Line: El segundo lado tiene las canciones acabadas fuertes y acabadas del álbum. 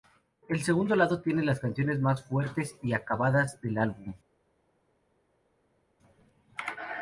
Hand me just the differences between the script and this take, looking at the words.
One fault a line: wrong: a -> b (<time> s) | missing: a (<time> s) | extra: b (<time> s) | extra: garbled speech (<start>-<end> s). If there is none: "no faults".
wrong: acabadas -> más (2.0 s)